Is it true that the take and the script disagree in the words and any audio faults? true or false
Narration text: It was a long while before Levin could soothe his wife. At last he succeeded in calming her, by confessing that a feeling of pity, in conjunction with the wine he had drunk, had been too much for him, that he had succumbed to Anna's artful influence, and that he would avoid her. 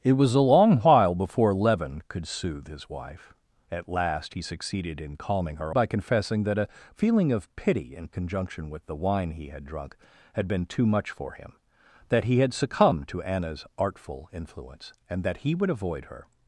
false